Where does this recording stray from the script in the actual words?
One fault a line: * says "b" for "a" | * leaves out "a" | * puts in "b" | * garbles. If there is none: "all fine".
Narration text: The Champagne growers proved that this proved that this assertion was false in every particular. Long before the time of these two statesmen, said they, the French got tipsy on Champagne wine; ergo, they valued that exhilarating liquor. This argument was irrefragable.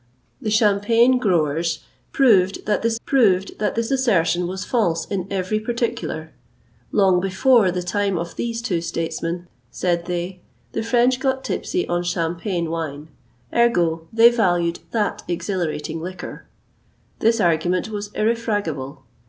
all fine